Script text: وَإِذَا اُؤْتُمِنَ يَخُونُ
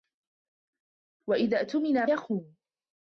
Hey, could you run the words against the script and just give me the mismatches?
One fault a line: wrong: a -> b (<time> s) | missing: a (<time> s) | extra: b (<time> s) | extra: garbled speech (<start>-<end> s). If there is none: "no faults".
no faults